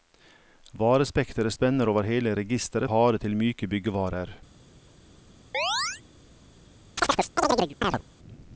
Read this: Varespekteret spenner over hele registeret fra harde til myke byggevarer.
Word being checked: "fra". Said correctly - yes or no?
no